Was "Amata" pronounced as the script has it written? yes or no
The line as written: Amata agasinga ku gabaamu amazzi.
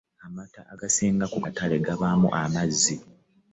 yes